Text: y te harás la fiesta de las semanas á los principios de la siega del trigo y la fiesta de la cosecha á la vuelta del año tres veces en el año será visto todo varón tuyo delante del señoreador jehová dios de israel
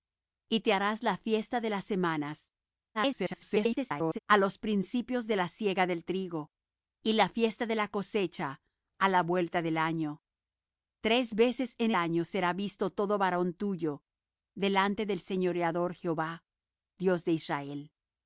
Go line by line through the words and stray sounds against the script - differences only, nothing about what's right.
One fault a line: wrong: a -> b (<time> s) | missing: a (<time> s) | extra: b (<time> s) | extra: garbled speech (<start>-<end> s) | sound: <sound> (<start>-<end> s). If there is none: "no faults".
extra: garbled speech (2.9-4.2 s)
missing: el (11.9 s)